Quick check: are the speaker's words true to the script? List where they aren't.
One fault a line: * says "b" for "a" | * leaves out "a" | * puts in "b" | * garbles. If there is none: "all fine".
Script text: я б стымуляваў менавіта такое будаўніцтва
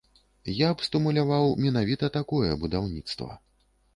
all fine